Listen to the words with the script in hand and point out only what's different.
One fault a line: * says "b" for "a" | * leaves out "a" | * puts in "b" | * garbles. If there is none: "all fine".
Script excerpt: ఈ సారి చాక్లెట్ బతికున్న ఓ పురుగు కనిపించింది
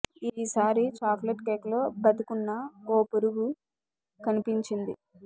* puts in "కేక్ లో"